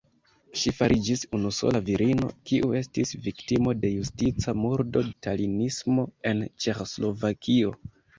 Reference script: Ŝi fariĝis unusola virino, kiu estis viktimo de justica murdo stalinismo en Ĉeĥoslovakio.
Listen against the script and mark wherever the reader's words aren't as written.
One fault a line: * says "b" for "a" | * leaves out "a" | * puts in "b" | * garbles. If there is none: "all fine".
all fine